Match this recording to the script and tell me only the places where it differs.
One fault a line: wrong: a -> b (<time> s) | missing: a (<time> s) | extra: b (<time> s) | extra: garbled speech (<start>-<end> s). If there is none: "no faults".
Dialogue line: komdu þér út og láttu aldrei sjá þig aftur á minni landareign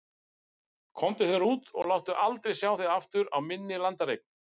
no faults